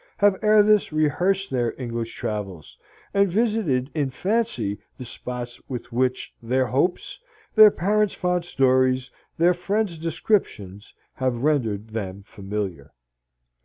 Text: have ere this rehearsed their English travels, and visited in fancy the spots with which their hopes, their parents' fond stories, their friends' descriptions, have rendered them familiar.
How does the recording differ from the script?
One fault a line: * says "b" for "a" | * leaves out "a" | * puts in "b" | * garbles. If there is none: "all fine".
all fine